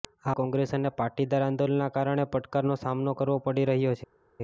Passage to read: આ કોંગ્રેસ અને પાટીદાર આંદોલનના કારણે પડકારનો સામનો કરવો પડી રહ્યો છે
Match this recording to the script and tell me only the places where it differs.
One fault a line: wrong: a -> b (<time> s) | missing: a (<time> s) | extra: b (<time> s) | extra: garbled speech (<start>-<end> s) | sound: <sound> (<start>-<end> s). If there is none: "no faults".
no faults